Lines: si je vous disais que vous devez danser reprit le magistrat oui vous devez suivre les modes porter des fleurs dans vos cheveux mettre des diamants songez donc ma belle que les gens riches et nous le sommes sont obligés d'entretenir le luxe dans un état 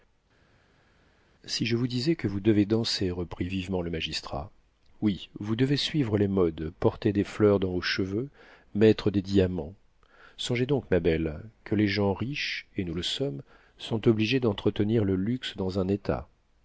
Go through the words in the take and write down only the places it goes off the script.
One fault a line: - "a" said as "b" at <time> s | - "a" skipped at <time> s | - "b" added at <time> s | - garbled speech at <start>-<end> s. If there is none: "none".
- "vivement" added at 3.5 s